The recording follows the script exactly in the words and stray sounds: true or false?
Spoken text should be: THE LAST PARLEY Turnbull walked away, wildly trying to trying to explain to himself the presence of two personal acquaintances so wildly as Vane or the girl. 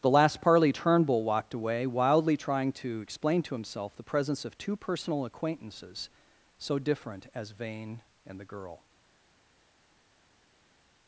false